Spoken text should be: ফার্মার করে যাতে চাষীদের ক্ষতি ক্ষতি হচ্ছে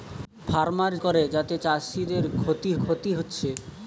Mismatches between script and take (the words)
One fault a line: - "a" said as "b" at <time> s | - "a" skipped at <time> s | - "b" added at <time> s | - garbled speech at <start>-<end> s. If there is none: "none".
none